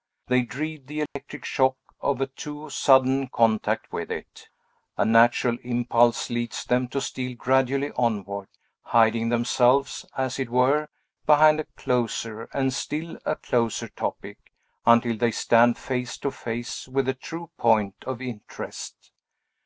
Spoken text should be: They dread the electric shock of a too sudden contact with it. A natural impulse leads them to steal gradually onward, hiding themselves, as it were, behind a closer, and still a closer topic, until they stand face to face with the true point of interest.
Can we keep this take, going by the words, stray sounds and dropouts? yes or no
no